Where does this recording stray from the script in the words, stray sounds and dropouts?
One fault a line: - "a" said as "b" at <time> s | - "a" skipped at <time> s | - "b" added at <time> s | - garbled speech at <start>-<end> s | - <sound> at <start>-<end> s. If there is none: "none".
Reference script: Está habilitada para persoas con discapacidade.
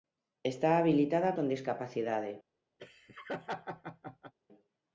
- "para persoas" skipped at 1.4 s
- laugh at 2.8-4.3 s